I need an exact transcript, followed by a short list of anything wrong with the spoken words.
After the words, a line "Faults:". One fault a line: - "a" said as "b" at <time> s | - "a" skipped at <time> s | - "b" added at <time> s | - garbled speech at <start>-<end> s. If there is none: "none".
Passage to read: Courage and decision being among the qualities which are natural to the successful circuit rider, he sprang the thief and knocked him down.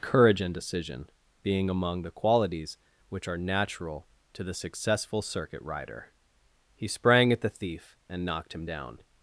Courage and decision being among the qualities which are natural to the successful circuit rider, he sprang at the thief and knocked him down.
Faults:
- "at" added at 7.3 s